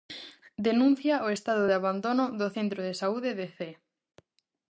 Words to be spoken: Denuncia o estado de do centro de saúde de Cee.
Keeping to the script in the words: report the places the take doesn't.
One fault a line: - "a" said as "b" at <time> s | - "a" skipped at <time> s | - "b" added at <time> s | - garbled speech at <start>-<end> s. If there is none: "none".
- "abandono" added at 1.8 s